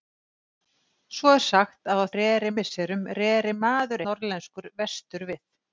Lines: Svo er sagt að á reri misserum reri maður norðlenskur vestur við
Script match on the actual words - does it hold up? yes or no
yes